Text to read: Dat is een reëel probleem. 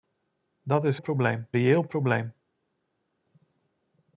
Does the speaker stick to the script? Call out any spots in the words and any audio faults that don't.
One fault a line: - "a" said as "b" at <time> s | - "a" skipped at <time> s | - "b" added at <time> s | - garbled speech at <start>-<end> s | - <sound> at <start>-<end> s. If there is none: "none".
- "een" said as "probleem" at 1.0 s